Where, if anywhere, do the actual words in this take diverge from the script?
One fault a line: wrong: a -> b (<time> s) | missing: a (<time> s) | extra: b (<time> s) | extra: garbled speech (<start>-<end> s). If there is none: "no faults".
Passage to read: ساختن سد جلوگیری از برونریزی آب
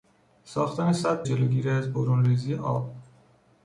no faults